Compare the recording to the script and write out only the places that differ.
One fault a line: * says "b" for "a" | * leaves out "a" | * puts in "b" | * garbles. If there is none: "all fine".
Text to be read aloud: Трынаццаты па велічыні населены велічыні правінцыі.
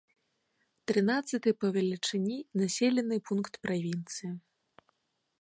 * says "пункт" for "велічыні"